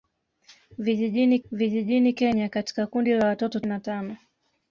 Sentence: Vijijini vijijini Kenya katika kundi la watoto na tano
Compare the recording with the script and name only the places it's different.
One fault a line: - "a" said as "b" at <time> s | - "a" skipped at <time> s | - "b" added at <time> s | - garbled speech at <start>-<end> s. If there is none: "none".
none